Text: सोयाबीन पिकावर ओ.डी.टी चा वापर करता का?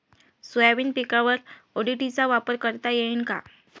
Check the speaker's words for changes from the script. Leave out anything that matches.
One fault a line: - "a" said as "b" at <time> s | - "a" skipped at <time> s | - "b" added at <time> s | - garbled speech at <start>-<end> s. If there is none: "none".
- "येईन" added at 2.9 s